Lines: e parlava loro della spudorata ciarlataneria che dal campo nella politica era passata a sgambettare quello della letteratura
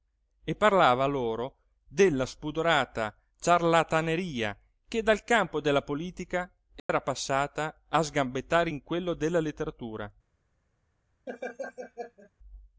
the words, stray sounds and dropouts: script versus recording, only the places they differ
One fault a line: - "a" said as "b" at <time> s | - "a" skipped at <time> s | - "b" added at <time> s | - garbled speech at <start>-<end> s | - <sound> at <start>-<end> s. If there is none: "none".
- "nella" said as "della" at 5.6 s
- dropout at 6.8-6.9 s
- "in" added at 8.7 s
- laugh at 11.3-12.3 s